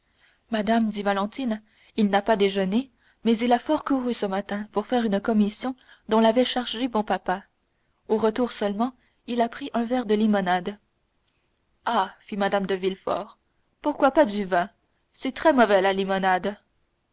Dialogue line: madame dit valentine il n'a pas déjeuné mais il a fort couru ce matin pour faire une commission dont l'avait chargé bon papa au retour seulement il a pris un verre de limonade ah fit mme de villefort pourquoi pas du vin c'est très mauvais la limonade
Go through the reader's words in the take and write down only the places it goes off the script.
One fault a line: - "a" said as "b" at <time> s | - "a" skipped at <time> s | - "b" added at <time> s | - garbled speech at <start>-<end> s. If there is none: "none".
none